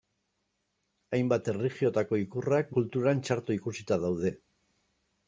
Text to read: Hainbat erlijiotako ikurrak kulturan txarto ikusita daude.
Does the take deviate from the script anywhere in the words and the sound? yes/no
no